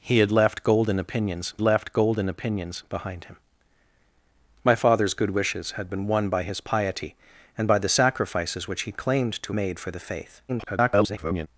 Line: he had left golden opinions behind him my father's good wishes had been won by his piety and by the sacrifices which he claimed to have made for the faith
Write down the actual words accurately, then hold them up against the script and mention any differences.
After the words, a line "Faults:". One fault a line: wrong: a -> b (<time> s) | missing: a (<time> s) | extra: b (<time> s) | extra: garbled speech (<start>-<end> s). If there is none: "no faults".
he had left golden opinions left golden opinions behind him my father's good wishes had been won by his piety and by the sacrifices which he claimed to made for the faith [garbled]
Faults:
extra: left golden opinions (1.6 s)
missing: have (9.5 s)
extra: garbled speech (10.5-11.5 s)